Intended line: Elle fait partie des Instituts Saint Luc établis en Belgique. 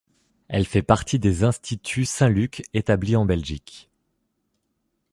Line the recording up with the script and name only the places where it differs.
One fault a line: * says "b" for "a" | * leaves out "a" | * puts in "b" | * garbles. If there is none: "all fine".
all fine